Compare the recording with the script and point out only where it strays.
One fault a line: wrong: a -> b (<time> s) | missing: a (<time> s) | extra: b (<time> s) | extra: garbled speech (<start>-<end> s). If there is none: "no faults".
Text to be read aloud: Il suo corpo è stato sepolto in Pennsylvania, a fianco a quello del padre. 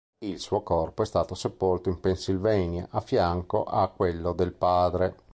no faults